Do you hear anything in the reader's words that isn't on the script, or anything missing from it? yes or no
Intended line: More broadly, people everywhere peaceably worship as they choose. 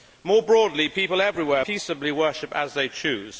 no